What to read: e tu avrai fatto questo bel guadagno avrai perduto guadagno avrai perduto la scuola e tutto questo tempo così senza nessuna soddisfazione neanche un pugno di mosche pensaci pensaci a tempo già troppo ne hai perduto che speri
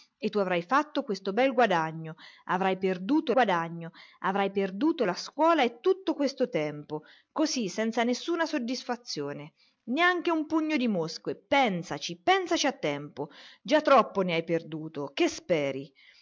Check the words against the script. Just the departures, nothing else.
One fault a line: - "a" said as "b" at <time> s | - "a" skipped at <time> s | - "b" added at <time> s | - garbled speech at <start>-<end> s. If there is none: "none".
none